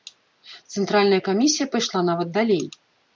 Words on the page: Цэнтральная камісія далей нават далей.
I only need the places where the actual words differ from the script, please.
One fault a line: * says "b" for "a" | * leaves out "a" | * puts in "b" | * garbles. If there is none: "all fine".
* says "пайшла" for "далей"